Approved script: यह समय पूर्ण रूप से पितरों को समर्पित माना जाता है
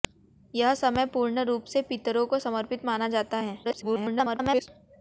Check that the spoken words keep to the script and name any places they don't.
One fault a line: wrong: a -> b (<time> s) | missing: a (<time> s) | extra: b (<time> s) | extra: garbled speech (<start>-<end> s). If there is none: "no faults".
extra: garbled speech (3.6-4.7 s)